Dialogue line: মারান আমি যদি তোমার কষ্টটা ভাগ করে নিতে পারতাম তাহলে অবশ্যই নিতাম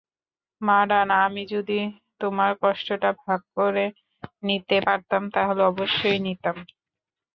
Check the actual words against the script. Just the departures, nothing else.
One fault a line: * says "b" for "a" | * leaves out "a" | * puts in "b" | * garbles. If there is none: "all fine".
all fine